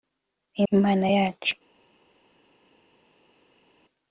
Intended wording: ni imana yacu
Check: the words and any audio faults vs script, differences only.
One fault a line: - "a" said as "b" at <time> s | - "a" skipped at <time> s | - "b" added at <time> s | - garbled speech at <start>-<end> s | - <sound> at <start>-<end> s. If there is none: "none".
none